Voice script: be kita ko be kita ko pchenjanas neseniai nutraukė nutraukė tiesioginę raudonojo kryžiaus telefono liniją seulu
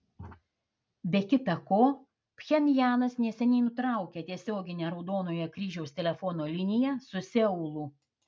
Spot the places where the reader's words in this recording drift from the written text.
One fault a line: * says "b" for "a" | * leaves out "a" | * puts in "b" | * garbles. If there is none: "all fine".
* leaves out "be kita ko"
* leaves out "nutraukė"
* puts in "su"